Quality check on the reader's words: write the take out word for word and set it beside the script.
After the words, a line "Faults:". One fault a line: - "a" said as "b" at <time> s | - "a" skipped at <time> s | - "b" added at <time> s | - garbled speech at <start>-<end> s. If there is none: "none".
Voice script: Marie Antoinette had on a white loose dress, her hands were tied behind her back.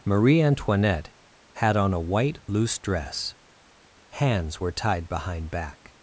Marie Antoinette had on a white loose dress, hands were tied behind back.
Faults:
- "her" skipped at 3.4 s
- "her" skipped at 5.5 s